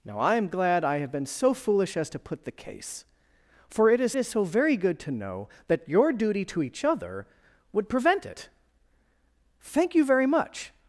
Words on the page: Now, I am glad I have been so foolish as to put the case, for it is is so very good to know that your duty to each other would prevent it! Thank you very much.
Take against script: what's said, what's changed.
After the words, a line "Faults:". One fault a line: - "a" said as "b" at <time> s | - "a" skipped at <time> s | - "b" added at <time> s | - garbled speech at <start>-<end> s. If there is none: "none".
Now, I am glad I have been so foolish as to put the case, for it is is so very good to know that your duty to each other would prevent it! Thank you very much.
Faults:
none